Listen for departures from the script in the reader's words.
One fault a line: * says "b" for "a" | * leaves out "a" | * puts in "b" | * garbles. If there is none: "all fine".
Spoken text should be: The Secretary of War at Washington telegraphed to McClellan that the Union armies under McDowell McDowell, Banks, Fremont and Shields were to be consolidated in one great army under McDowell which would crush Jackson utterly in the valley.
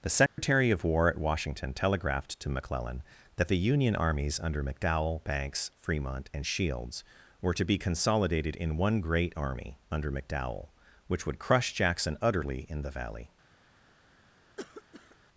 * leaves out "McDowell"